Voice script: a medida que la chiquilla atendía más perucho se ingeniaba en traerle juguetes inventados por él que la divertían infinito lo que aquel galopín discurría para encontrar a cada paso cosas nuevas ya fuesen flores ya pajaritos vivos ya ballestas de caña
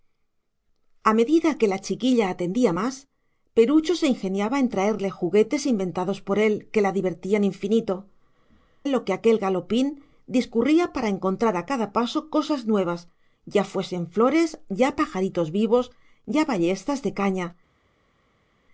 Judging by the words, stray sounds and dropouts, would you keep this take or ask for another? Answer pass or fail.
pass